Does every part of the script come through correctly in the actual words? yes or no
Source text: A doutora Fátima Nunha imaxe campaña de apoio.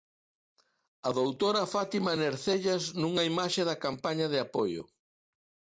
no